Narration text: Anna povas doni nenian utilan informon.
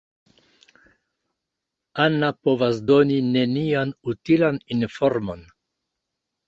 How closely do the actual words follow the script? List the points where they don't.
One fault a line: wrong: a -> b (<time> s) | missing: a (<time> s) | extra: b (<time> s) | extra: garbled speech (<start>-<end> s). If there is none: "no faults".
no faults